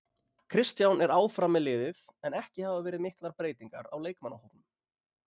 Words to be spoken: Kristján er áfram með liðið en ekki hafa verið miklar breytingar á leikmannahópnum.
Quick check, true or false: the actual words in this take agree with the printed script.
true